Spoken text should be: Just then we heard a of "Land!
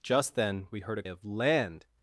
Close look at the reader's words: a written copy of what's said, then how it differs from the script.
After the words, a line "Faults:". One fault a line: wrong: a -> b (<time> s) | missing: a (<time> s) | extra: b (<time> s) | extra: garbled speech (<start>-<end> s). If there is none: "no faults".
Just then we heard a of "Land!
Faults:
no faults